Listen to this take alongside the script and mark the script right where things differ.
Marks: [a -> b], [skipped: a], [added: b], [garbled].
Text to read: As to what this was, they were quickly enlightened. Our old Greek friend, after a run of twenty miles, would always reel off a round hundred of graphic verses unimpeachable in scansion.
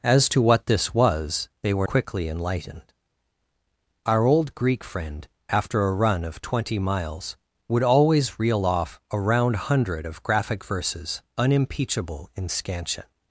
As to what this was, they were quickly enlightened. Our old Greek friend, after a run of twenty miles, would always reel off a round hundred of graphic verses unimpeachable in scansion.